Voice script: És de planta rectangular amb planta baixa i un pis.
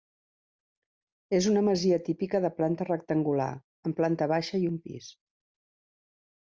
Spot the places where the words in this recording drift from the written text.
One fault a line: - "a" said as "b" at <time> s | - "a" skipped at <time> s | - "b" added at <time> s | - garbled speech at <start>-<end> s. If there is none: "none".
- "una masia típica" added at 1.5 s